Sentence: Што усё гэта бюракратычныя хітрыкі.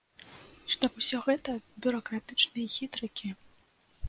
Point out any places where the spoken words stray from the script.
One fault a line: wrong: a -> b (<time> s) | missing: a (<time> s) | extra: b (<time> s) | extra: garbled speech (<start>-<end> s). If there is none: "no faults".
no faults